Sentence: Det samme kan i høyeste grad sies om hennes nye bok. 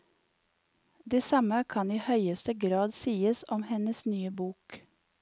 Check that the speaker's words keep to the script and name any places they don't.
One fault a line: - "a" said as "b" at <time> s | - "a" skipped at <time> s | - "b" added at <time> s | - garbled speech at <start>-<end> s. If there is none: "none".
none